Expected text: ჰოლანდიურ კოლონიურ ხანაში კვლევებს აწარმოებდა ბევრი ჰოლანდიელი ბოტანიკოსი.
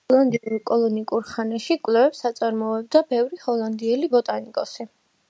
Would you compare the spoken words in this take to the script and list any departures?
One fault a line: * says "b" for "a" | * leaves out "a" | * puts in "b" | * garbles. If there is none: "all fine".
all fine